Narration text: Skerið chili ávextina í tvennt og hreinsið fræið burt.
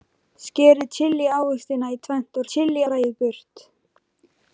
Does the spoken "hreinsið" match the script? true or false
false